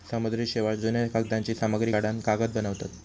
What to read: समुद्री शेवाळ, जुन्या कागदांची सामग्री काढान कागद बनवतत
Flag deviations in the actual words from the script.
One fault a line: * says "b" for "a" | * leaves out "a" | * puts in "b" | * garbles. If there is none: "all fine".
all fine